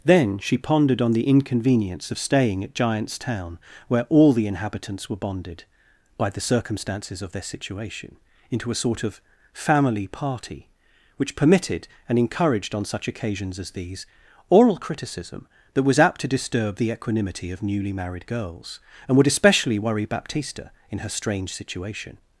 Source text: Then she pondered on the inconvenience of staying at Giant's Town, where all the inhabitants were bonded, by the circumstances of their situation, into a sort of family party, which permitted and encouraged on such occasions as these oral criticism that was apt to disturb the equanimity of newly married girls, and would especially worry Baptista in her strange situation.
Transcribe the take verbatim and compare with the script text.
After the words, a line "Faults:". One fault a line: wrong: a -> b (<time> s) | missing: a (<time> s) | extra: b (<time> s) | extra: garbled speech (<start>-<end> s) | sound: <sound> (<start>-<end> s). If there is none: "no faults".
Then she pondered on the inconvenience of staying at Giant's Town, where all the inhabitants were bonded, by the circumstances of their situation, into a sort of family party, which permitted and encouraged on such occasions as these oral criticism that was apt to disturb the equanimity of newly married girls, and would especially worry Baptista in her strange situation.
Faults:
no faults